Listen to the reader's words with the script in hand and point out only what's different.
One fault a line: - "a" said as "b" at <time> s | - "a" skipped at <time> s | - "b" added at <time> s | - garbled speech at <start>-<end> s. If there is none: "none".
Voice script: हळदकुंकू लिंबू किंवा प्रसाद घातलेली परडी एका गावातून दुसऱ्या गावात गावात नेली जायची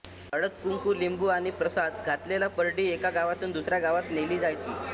- "किंवा" said as "आणि" at 1.3 s
- "गावात" skipped at 4.1 s